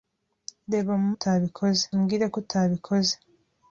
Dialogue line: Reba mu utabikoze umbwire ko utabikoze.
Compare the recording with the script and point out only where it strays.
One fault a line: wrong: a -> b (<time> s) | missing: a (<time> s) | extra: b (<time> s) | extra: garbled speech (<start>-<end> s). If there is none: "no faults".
no faults